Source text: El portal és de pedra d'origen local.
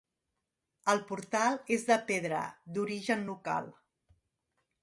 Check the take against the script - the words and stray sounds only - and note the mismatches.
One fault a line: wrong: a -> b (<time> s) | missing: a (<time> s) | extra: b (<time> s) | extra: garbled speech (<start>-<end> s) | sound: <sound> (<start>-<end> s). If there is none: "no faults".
no faults